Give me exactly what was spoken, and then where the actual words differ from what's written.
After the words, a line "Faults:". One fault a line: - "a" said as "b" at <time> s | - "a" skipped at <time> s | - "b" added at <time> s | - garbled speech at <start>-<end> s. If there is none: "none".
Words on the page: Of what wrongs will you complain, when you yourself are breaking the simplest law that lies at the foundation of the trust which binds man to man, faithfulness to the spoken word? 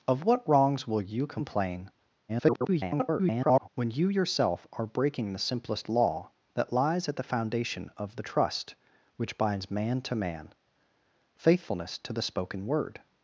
Of what wrongs will you complain, [garbled] when you yourself are breaking the simplest law that lies at the foundation of the trust which binds man to man, faithfulness to the spoken word?
Faults:
- garbled speech at 2.3-3.7 s